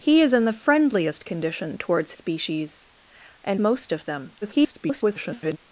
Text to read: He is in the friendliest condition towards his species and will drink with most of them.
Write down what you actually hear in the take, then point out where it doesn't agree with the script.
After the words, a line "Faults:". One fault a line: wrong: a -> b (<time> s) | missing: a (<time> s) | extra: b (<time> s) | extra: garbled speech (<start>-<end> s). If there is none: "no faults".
He is in the friendliest condition towards species and most of them. [garbled]
Faults:
missing: his (2.1 s)
missing: will drink with (3.6 s)
extra: garbled speech (4.4-5.6 s)